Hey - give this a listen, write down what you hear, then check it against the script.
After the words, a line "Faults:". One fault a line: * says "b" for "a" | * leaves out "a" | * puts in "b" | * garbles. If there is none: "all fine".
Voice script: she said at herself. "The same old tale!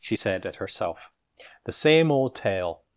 she said at herself. "The same old tale!
Faults:
all fine